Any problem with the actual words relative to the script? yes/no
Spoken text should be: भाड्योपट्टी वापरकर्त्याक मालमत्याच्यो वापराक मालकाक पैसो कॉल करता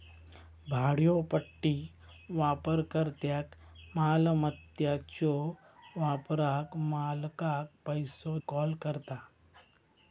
no